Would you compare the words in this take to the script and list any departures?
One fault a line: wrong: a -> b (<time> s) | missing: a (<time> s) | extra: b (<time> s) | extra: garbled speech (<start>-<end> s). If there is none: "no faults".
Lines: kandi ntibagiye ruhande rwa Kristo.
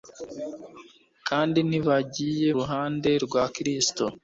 no faults